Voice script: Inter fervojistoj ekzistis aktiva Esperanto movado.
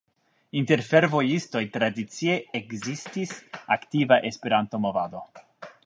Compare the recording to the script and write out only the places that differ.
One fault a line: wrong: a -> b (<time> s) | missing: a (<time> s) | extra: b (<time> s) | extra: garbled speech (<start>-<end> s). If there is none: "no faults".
extra: tradicie (1.8 s)